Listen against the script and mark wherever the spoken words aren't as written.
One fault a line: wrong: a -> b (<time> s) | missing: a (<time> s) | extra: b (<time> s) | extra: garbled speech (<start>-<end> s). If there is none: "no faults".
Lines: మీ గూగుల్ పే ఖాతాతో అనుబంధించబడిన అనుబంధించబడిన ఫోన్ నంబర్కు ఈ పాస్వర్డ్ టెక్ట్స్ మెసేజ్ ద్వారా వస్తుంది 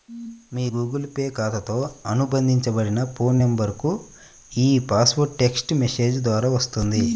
missing: అనుబంధించబడిన (3.0 s)